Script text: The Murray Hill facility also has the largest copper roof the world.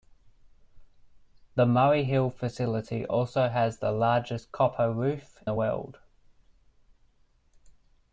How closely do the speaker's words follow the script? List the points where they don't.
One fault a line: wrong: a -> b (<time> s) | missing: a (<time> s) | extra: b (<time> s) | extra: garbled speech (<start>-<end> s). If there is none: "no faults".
no faults